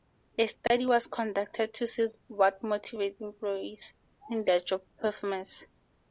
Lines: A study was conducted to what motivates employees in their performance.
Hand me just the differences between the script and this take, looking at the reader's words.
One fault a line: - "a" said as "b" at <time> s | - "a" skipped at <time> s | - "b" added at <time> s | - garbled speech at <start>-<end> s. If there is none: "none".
- "see" added at 1.9 s
- "job" added at 4.6 s